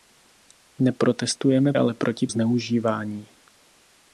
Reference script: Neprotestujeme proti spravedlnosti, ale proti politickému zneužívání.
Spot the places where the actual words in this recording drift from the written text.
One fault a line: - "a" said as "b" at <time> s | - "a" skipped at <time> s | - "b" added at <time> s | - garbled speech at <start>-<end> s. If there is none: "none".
- "proti spravedlnosti" skipped at 1.7 s
- "politickému" skipped at 2.3 s